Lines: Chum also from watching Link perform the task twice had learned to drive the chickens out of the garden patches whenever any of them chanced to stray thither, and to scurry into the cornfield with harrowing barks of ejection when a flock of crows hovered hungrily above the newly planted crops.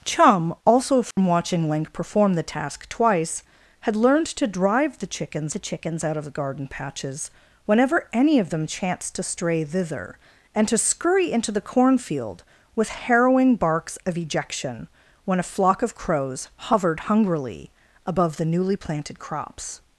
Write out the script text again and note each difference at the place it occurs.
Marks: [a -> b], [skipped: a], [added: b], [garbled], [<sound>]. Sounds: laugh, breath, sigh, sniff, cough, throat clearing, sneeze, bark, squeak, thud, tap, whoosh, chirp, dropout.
Chum also from [dropout] watching Link perform the task twice had learned to drive the chickens [added: the chickens] out of the garden patches whenever any of them chanced to stray thither, and to scurry into the cornfield with harrowing barks of ejection when a flock of crows hovered hungrily above the newly planted crops.